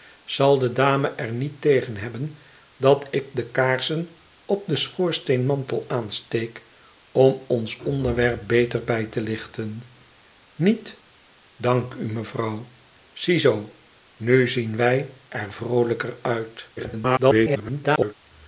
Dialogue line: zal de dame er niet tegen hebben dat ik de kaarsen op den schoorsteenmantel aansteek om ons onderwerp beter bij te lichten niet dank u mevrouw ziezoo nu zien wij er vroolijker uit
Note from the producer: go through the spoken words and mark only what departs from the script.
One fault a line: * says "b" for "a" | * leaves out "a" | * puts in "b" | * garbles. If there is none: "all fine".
* garbles